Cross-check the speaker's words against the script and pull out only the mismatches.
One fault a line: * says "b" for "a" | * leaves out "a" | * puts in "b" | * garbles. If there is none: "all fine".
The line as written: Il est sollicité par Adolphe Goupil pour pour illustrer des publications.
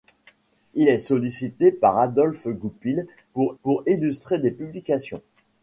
all fine